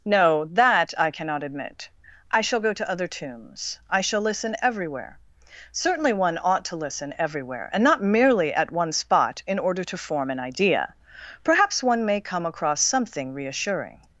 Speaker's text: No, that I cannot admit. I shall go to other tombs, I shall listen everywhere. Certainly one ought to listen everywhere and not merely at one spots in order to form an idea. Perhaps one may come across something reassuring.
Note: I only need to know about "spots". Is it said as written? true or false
false